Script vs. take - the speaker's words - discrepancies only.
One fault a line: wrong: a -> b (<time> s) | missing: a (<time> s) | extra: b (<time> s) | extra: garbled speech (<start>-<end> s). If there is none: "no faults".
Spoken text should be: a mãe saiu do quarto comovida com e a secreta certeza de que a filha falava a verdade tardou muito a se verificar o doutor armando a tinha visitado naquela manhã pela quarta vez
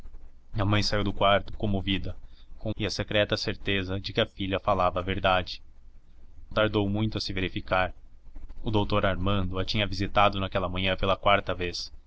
no faults